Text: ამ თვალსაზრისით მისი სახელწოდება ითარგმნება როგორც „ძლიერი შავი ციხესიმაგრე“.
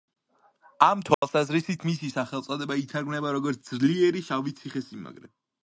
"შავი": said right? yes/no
yes